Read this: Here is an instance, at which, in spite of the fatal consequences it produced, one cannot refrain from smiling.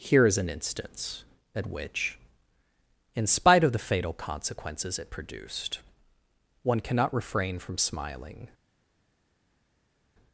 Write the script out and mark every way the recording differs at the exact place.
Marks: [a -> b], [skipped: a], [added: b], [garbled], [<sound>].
Here is an instance, at which, in spite of the fatal consequences it produced, one cannot refrain from smiling.